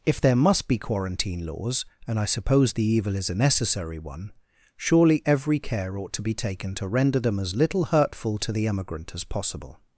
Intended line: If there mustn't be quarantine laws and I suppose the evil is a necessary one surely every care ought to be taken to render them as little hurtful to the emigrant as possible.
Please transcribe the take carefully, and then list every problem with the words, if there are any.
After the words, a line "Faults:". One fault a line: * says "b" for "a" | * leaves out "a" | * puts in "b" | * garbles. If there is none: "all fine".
If there must be quarantine laws and I suppose the evil is a necessary one surely every care ought to be taken to render them as little hurtful to the emigrant as possible.
Faults:
* says "must" for "mustn't"